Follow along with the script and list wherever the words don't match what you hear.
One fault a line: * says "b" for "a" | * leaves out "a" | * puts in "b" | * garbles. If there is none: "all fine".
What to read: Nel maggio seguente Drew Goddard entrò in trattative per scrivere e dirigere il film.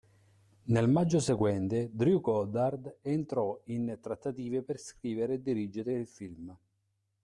all fine